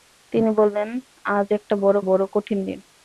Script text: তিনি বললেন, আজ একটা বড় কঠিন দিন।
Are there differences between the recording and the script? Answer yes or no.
yes